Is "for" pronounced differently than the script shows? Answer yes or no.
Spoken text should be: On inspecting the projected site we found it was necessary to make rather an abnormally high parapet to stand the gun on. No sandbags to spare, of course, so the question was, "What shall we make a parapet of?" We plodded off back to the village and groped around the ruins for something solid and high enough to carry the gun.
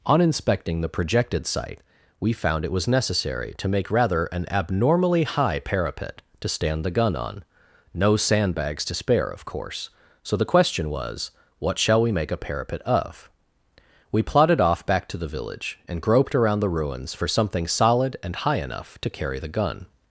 no